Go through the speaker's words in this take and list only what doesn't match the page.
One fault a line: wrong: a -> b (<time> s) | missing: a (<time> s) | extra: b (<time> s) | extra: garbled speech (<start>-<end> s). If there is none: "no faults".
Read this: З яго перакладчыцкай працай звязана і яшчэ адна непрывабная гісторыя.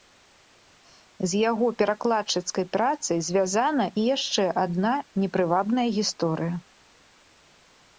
no faults